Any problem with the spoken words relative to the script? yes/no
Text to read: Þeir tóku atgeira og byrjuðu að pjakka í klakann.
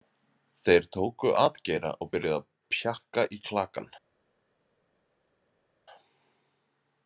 no